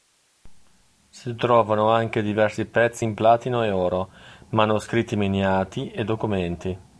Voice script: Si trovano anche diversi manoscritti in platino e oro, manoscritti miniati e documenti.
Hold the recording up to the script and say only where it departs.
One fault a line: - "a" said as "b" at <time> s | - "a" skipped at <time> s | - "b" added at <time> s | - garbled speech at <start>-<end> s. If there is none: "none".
- "manoscritti" said as "pezzi" at 2.6 s